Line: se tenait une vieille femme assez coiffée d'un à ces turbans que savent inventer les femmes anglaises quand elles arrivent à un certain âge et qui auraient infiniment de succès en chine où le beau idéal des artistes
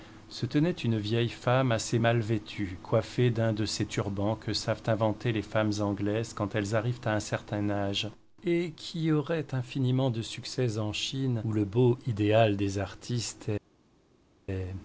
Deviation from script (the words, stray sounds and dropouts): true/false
true